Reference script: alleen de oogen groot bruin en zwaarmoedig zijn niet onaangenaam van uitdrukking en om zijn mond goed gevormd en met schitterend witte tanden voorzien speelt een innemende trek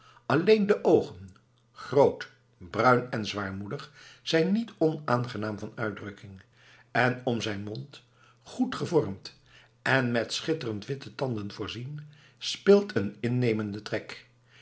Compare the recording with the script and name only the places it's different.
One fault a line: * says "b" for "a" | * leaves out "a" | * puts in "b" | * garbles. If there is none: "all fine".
all fine